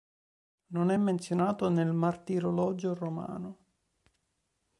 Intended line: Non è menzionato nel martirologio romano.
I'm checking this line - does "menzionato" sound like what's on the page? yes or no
yes